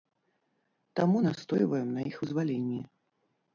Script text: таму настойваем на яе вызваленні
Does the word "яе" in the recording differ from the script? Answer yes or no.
yes